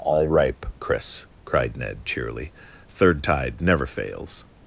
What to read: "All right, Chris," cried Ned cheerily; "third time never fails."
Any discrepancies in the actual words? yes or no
yes